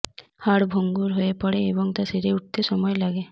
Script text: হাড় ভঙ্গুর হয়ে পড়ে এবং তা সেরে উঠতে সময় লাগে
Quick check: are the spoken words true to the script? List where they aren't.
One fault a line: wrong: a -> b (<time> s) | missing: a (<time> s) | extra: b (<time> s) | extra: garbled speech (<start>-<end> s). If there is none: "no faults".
no faults